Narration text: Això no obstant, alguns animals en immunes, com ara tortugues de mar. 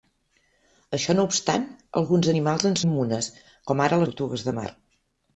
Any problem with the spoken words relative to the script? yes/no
no